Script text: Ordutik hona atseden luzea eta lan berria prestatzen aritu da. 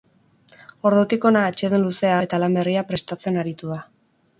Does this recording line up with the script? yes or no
yes